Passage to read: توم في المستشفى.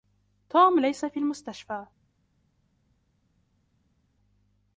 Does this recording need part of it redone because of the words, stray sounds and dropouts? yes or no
yes